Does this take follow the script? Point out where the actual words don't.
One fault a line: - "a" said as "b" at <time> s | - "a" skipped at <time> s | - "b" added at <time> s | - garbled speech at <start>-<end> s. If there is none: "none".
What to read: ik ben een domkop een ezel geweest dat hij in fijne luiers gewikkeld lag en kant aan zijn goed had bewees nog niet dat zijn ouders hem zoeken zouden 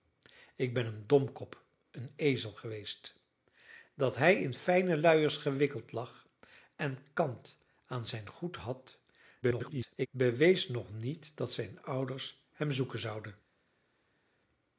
- garbled speech at 9.4-10.1 s